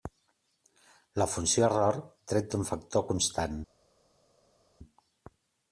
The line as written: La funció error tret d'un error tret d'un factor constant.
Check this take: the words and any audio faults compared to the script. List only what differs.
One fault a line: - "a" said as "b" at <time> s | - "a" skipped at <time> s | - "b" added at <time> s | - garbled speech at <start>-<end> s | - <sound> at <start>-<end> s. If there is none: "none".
- "error tret d'un" skipped at 2.6 s